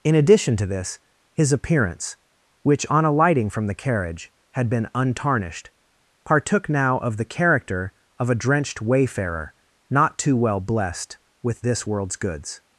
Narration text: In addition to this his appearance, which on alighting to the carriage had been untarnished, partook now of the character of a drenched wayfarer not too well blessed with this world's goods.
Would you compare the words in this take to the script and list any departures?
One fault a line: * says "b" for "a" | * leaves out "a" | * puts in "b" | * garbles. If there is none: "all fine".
* says "from" for "to"